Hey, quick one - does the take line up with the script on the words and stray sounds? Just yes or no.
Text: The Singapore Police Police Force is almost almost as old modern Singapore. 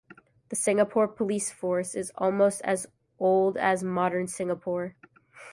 no